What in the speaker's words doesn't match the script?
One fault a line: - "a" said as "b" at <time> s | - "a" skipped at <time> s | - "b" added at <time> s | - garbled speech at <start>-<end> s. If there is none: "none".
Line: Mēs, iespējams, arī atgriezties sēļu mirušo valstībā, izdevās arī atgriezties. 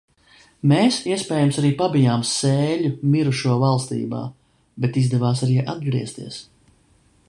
- "atgriezties" said as "pabijām" at 1.8 s
- "bet" added at 4.8 s